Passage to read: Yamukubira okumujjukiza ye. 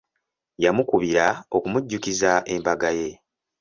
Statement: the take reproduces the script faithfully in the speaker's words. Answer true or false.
false